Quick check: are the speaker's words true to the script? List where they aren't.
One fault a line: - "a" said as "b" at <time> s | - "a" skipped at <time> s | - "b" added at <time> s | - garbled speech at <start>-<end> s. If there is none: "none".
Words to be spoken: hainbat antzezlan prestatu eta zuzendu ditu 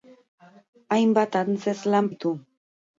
- "prestatu eta zuzendu" skipped at 2.1 s